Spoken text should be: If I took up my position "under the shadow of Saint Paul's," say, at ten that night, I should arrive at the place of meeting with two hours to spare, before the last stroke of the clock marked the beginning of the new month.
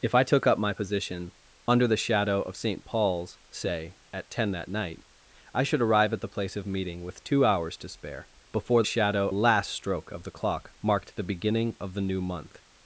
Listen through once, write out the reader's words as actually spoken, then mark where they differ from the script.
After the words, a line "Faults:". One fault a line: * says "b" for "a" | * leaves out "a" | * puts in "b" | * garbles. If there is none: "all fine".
If I took up my position "under the shadow of Saint Paul's," say, at ten that night, I should arrive at the place of meeting with two hours to spare, before shadow last stroke of the clock marked the beginning of the new month.
Faults:
* says "shadow" for "the"